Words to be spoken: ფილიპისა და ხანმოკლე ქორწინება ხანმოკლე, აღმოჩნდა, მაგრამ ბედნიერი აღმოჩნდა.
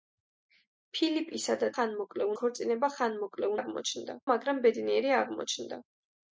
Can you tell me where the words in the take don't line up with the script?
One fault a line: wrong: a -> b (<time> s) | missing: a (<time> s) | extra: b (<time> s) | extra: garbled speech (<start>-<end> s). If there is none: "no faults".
no faults